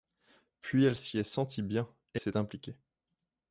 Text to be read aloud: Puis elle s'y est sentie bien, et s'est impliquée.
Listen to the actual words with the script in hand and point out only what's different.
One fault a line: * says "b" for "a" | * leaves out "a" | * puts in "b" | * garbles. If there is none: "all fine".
all fine